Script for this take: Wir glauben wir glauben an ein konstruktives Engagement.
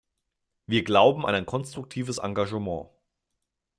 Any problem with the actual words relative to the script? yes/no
yes